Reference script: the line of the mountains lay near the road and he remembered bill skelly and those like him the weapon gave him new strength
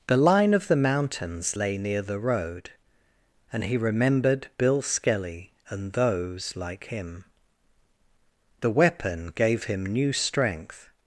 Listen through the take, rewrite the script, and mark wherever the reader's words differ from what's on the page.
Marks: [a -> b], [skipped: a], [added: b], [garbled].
the line of the mountains lay near the road and he remembered bill skelly and those like him the weapon gave him new strength